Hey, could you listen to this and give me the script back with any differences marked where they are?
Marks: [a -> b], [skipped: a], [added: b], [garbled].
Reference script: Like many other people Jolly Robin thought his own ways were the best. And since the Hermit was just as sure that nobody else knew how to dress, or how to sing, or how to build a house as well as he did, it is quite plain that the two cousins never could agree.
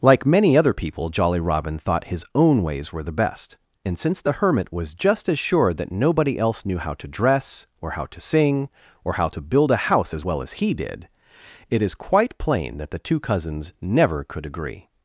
Like many other people Jolly Robin thought his own ways were the best. And since the Hermit was just as sure that nobody else knew how to dress, or how to sing, or how to build a house as well as he did, it is quite plain that the two cousins never could agree.